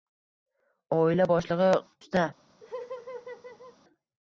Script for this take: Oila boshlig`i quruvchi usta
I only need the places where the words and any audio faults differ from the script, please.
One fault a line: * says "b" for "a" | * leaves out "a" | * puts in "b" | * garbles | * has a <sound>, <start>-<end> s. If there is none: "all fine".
* leaves out "quruvchi"
* has a laugh, 2.6-3.8 s